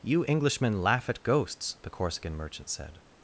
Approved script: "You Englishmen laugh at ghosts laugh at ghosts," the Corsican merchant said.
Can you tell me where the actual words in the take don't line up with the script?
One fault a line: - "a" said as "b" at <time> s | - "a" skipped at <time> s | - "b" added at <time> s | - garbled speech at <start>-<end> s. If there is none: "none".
- "laugh at ghosts" skipped at 1.8 s